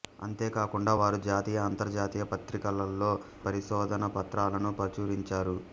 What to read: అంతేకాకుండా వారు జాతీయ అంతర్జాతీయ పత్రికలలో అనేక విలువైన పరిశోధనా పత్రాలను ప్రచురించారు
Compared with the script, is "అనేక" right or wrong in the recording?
wrong